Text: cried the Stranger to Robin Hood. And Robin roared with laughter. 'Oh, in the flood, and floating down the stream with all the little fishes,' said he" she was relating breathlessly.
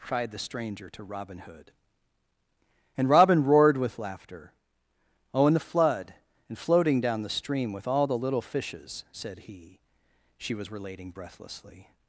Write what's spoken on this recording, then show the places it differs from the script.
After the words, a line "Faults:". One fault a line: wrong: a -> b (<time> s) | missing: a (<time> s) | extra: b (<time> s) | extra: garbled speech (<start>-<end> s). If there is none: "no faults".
cried the Stranger to Robin Hood. And Robin roared with laughter. 'Oh, in the flood, and floating down the stream with all the little fishes,' said he" she was relating breathlessly.
Faults:
no faults